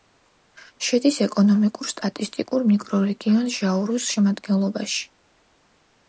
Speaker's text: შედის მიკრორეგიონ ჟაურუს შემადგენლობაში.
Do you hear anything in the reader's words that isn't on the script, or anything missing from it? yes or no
yes